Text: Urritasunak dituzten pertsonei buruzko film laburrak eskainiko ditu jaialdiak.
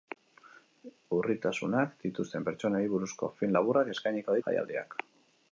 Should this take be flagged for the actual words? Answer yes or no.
yes